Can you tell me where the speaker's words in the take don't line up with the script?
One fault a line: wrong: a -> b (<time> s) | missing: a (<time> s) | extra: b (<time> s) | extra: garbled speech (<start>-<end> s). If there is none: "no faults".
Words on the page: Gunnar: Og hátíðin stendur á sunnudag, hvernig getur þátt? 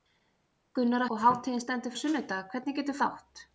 no faults